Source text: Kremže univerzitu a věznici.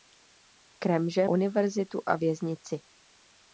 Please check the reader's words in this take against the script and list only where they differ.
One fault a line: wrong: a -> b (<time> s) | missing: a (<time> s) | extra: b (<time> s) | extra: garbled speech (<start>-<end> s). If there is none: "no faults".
no faults